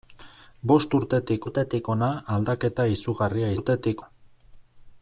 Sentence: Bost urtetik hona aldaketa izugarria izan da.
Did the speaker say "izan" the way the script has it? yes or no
no